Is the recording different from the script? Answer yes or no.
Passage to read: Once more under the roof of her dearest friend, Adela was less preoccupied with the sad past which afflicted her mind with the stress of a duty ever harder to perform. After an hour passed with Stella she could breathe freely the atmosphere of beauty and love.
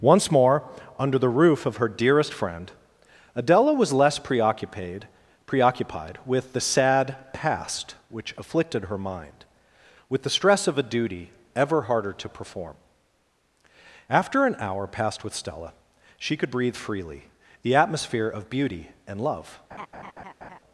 yes